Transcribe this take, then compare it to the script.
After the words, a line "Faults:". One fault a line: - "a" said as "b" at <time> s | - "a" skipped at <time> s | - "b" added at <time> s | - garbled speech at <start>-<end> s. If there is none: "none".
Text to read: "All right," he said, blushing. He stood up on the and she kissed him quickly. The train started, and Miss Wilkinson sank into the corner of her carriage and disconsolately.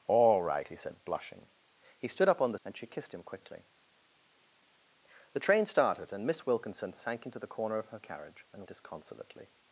"All right," he said, blushing. He stood up on the and she kissed him quickly. The train started, and Miss Wilkinson sank into the corner of her carriage and disconsolately.
Faults:
none